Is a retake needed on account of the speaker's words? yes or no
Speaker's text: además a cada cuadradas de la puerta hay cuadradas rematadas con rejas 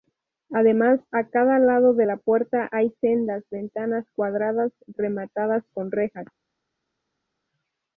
yes